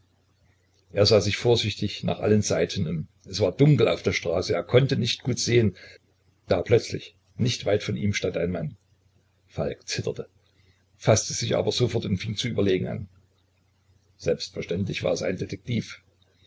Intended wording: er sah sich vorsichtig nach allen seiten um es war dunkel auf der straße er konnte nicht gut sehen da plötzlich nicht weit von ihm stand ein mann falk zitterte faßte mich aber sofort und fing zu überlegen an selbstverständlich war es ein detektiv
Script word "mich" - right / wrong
wrong